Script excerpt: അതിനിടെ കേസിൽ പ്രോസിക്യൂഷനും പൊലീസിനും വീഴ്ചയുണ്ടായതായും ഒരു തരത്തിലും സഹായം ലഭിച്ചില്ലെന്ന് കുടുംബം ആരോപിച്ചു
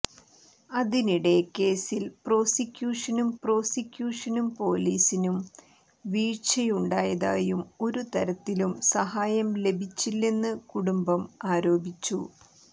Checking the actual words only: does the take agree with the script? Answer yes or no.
no